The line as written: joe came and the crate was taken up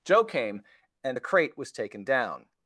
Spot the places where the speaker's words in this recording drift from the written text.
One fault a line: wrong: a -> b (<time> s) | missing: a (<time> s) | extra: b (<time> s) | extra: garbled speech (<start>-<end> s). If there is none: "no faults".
wrong: up -> down (2.0 s)